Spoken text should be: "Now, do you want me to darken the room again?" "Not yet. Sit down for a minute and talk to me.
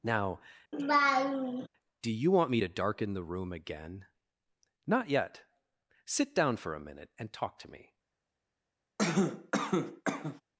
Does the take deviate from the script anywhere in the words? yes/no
no